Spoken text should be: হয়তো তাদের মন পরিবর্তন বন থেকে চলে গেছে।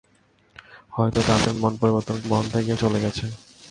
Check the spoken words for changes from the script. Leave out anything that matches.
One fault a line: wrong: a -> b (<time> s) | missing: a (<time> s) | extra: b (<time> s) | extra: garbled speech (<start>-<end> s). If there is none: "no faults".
no faults